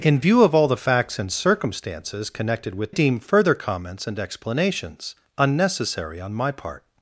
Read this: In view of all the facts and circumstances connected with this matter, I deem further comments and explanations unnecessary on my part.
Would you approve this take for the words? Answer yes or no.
no